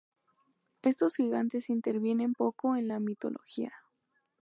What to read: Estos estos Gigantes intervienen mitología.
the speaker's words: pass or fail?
fail